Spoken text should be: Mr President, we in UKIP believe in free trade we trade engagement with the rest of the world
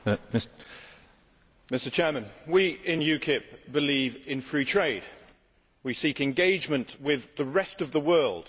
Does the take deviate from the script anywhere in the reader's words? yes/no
yes